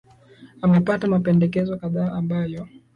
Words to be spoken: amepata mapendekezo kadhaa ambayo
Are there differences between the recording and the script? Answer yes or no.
no